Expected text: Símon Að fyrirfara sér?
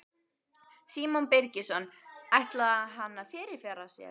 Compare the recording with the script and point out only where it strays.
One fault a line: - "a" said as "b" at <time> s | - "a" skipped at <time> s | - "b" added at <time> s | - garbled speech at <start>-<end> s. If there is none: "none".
- "Birgisson Ætlaði hann" added at 1.3 s